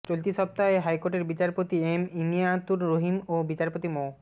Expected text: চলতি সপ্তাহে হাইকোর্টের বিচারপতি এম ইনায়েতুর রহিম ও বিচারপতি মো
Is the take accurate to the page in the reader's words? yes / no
yes